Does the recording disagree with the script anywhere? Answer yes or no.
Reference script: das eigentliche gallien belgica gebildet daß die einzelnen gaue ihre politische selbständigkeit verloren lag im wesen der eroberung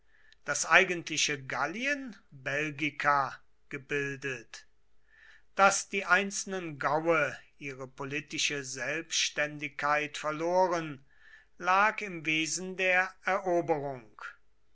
no